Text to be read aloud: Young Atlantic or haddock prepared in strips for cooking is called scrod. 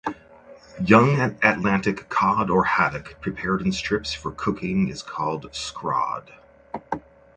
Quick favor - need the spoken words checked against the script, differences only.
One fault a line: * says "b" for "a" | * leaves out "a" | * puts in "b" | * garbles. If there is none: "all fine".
* puts in "cod"